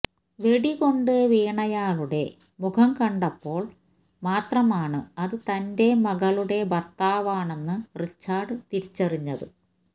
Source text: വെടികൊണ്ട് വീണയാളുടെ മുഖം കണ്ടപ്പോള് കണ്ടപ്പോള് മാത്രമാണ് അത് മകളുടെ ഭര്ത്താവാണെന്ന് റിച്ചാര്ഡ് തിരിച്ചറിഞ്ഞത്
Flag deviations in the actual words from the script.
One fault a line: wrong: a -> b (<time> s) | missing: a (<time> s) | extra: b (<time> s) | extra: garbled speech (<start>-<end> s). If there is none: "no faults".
missing: കണ്ടപ്പോള് (3.7 s)
extra: തന്റെ (5.5 s)